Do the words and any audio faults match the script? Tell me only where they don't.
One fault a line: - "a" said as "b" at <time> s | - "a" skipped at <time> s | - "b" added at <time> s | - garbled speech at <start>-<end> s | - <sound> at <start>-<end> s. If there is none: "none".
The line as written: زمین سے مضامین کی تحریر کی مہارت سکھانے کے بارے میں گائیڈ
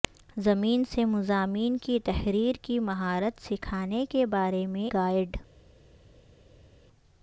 none